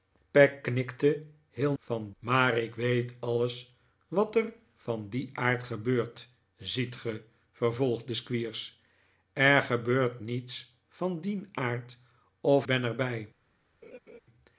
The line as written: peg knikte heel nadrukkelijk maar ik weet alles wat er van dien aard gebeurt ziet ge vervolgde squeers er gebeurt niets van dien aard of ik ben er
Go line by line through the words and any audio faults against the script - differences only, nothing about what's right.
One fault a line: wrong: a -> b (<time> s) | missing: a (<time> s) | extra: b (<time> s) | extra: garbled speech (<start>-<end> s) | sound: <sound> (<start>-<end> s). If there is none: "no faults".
wrong: nadrukkelijk -> van (1.8 s)
missing: ik (12.7 s)
sound: laugh (13.8-14.2 s)